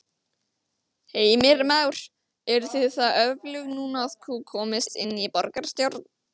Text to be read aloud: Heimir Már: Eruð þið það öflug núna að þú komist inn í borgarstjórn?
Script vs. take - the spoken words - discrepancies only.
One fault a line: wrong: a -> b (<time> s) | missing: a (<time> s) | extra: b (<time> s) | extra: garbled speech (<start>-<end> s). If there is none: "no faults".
no faults